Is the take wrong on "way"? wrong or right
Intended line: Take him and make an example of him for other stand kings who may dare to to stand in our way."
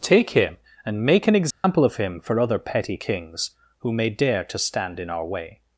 right